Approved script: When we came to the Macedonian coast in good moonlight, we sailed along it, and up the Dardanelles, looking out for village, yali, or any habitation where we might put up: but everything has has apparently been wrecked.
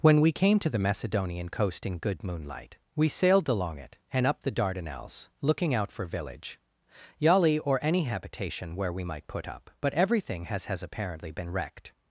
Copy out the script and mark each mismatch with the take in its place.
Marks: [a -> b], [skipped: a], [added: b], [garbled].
When we came to the Macedonian coast in good moonlight, we sailed along it, and up the Dardanelles, looking out for village, yali, or any habitation where we might put up: but everything has has apparently been wrecked.